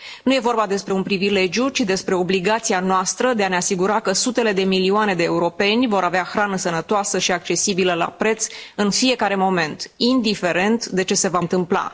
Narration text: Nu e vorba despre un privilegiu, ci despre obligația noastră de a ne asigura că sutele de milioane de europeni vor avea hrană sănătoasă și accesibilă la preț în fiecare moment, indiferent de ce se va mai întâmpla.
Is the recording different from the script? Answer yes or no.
yes